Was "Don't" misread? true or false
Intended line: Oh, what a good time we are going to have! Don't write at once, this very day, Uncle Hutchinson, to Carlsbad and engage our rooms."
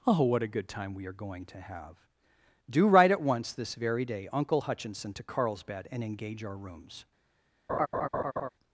true